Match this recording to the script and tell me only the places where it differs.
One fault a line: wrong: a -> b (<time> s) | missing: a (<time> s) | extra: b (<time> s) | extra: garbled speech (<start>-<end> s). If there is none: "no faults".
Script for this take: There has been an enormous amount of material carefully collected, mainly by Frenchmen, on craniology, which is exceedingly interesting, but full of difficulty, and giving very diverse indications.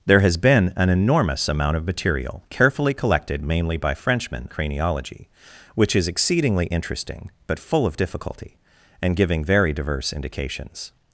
missing: on (4.5 s)